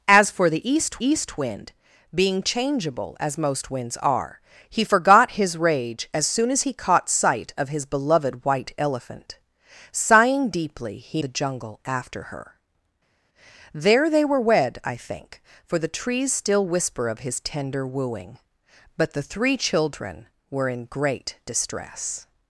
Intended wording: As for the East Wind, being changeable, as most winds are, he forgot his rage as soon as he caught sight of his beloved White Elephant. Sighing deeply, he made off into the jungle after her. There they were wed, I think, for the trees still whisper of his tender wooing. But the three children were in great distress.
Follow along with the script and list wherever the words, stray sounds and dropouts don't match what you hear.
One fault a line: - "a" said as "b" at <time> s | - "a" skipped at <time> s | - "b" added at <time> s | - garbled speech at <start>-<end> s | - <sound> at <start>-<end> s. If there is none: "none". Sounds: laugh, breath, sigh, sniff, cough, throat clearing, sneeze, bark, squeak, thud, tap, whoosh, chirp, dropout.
- "East" added at 1.0 s
- "made off into" skipped at 11.2 s